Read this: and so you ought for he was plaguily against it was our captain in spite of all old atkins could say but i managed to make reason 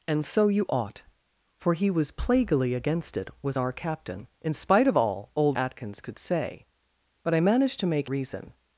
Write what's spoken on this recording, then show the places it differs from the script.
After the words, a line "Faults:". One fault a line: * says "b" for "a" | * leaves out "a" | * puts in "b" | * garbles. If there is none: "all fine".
and so you ought for he was plaguily against it was our captain in spite of all old atkins could say but i managed to make reason
Faults:
all fine